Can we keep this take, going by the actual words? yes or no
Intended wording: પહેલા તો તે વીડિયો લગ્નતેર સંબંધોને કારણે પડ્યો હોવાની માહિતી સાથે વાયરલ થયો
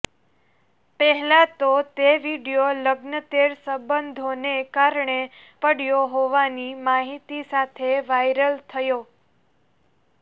yes